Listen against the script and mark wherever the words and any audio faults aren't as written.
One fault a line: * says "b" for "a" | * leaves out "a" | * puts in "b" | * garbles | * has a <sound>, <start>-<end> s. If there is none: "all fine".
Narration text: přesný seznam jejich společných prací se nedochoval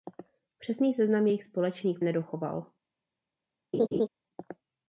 * leaves out "prací se"
* has a laugh, 3.7-4.1 s